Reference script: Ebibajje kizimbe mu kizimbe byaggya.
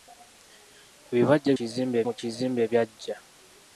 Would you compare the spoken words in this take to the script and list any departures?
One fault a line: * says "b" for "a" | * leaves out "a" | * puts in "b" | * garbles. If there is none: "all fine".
all fine